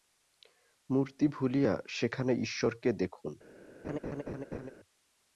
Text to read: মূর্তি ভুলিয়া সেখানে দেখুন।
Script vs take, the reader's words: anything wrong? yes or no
yes